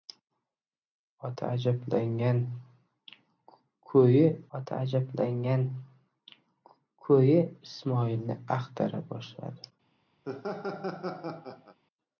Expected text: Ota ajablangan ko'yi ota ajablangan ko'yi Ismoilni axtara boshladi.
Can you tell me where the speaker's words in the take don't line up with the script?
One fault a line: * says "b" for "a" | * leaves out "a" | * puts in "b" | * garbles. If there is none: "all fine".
all fine